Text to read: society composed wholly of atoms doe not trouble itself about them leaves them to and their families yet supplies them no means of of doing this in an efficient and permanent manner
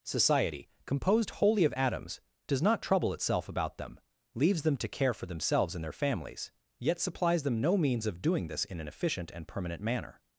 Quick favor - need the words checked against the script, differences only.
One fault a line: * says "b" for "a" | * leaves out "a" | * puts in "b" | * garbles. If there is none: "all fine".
* says "does" for "doe"
* puts in "care for themselves"
* leaves out "of"